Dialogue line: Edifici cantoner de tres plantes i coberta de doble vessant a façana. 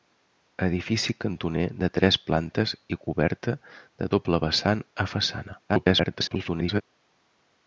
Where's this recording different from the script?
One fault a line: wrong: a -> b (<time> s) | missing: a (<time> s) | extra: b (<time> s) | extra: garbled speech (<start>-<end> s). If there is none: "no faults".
extra: garbled speech (5.7-6.8 s)